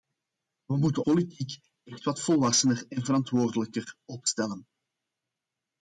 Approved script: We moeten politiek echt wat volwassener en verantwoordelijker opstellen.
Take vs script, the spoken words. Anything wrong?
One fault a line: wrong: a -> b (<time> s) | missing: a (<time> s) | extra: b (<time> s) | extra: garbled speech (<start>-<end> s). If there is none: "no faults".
no faults